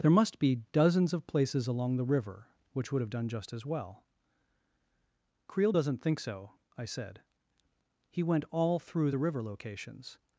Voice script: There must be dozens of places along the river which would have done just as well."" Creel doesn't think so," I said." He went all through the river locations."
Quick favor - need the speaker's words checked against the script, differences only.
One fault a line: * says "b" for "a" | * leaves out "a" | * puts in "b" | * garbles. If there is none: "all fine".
all fine